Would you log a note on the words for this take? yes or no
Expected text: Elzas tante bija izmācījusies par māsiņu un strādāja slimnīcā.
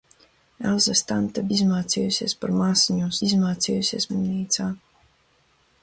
yes